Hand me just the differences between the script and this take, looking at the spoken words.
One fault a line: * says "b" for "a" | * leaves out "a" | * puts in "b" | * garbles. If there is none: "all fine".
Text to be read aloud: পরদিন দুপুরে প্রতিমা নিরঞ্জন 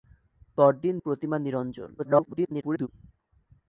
* leaves out "দুপুরে"
* garbles